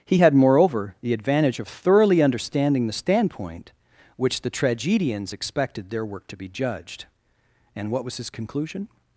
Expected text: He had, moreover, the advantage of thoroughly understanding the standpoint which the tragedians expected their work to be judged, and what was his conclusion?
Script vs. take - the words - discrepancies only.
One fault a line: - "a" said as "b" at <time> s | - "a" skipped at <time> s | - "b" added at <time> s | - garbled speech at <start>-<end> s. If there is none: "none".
none